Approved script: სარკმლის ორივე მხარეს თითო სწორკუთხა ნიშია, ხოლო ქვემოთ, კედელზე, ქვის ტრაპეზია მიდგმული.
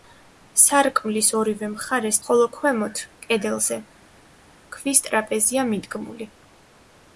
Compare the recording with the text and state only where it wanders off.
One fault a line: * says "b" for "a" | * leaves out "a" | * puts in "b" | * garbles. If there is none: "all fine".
* leaves out "თითო სწორკუთხა ნიშია"